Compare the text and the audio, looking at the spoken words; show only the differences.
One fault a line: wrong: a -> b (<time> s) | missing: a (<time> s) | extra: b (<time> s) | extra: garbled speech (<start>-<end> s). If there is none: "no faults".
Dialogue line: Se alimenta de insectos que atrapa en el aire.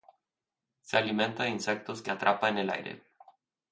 no faults